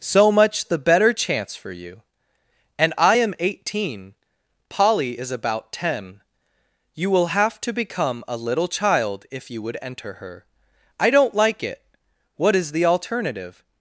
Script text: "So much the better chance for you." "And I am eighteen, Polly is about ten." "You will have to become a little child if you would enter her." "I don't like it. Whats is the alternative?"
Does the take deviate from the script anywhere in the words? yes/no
yes